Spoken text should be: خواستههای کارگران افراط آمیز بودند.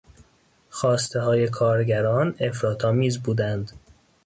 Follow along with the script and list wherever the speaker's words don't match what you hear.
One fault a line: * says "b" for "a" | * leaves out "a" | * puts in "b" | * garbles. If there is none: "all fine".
all fine